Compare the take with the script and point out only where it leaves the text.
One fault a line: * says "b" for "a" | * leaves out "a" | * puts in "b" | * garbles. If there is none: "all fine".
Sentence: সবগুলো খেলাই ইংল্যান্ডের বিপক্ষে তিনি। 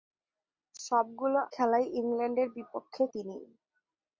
all fine